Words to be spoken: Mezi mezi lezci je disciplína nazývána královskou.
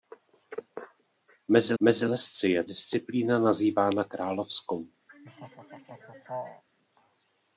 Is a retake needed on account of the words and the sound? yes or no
yes